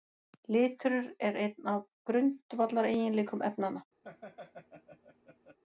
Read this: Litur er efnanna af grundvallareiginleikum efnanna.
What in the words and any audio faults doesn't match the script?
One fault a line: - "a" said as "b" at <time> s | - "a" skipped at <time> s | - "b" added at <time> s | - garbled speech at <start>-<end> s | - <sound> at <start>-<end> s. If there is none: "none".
- "efnanna" said as "einn" at 1.4 s
- laugh at 4.0-5.6 s